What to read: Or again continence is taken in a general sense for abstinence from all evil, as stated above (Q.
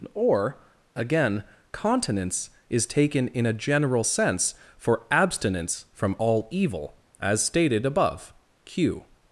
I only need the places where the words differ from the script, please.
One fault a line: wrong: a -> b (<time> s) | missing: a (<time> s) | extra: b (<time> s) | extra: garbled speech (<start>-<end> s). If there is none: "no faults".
no faults